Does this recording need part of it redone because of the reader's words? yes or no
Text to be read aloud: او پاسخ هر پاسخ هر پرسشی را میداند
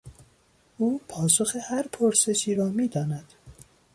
yes